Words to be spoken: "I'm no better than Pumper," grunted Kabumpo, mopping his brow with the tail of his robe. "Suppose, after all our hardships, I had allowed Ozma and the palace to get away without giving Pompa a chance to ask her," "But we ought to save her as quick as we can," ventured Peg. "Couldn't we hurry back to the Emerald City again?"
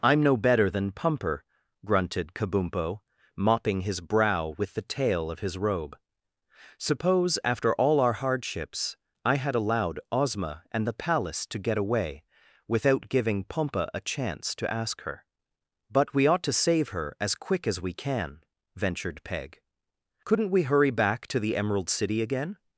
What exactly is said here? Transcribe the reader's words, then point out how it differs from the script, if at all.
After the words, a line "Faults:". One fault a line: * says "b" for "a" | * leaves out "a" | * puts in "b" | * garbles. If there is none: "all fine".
"I'm no better than Pumper," grunted Kabumpo, mopping his brow with the tail of his robe. "Suppose, after all our hardships, I had allowed Ozma and the palace to get away without giving Pompa a chance to ask her," "But we ought to save her as quick as we can," ventured Peg. "Couldn't we hurry back to the Emerald City again?"
Faults:
all fine